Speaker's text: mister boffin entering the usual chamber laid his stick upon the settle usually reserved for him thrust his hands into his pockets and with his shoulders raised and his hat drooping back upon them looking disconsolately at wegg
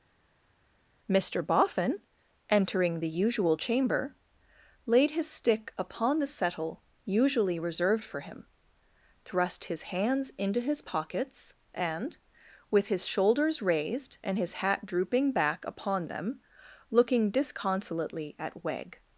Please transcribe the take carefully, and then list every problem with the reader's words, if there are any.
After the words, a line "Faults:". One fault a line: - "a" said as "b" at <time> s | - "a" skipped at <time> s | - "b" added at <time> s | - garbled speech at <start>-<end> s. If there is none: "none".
mister boffin entering the usual chamber laid his stick upon the settle usually reserved for him thrust his hands into his pockets and with his shoulders raised and his hat drooping back upon them looking disconsolately at wegg
Faults:
none